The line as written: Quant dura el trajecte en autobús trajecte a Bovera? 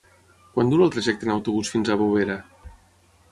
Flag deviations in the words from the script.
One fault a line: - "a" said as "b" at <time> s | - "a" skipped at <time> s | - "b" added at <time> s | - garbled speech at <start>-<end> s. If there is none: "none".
- "trajecte" said as "fins" at 1.7 s